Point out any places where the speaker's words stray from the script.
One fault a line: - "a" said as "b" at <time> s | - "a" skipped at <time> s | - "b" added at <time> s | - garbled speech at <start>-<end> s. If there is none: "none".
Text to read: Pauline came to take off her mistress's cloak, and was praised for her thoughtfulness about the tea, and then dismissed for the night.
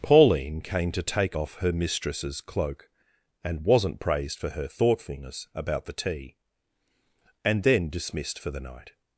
- "was" said as "wasn't" at 3.6 s